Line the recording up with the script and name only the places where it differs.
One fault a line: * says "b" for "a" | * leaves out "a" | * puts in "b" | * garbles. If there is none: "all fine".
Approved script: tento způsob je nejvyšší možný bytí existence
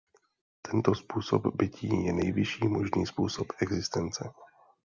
* puts in "bytí"
* says "způsob" for "bytí"